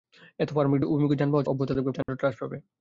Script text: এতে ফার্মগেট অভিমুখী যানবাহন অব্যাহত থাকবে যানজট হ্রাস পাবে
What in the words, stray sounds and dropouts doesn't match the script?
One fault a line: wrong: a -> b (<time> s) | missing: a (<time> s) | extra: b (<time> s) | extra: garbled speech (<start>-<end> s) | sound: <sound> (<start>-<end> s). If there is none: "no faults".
sound: dropout (2.0-2.1 s)